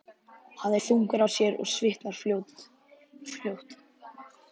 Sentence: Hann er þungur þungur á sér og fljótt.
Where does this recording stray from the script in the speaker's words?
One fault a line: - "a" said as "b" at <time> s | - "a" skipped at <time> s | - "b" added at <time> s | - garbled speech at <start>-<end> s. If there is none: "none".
- "þungur" skipped at 1.2 s
- "svitnar" added at 1.7 s